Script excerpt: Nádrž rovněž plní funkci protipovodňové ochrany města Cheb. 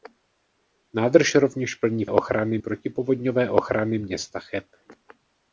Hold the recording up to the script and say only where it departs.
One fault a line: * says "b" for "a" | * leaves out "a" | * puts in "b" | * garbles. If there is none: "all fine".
* says "ochrany" for "funkci"